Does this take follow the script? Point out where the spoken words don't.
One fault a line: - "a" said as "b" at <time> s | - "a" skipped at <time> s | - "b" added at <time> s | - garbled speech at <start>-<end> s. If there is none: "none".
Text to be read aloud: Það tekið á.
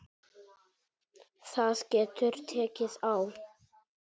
- "getur" added at 2.0 s